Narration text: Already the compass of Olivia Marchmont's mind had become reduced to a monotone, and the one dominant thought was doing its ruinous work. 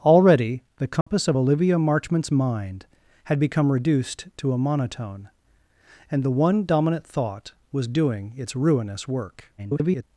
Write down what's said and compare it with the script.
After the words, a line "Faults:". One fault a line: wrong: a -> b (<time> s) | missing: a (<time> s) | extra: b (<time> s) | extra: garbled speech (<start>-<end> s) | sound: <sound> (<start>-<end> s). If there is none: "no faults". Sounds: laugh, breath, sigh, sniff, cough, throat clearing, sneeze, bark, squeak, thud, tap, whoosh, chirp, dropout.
Already the compass of Olivia Marchmont's mind had become reduced to a monotone, and the one dominant thought was doing its ruinous work. [garbled]
Faults:
sound: dropout (1.0-1.1 s)
extra: garbled speech (9.6-10.0 s)